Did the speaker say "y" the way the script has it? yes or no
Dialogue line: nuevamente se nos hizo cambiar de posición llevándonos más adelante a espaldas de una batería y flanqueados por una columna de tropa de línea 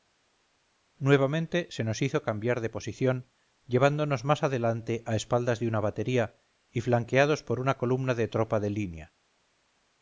yes